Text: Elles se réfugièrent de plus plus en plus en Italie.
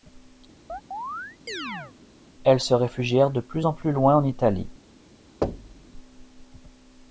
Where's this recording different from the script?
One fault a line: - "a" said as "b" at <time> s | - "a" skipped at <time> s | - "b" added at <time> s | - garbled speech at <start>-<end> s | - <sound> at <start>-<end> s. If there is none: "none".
- chirp at 0.7-1.9 s
- "plus" skipped at 3.7 s
- "loin" added at 3.9 s
- thud at 5.4-5.9 s